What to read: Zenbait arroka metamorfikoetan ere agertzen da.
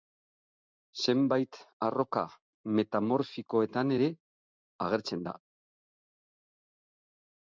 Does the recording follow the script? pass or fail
pass